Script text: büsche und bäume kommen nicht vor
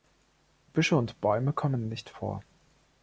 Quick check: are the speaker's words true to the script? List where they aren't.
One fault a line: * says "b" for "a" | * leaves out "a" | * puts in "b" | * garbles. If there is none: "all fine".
all fine